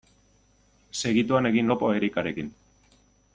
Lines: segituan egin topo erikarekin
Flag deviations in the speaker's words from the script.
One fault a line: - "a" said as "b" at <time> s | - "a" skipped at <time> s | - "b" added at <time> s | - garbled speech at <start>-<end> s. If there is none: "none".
none